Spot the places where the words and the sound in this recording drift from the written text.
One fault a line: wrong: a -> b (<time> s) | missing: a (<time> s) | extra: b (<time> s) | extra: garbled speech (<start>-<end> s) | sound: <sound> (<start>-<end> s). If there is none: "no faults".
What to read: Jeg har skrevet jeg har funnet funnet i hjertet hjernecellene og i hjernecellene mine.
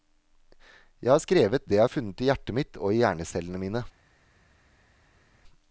extra: det (1.6 s)
missing: funnet (2.2 s)
wrong: hjernecellene -> mitt (2.5 s)